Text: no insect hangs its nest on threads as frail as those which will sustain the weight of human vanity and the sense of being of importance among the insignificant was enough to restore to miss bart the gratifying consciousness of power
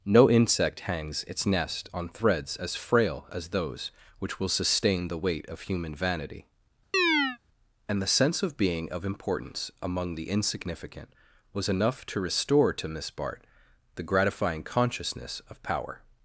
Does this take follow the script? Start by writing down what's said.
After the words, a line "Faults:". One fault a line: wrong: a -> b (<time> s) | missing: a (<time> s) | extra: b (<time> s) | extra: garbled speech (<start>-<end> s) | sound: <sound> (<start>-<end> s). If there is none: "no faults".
no insect hangs its nest on threads as frail as those which will sustain the weight of human vanity and the sense of being of importance among the insignificant was enough to restore to miss bart the gratifying consciousness of power
Faults:
sound: chirp (6.9-7.4 s)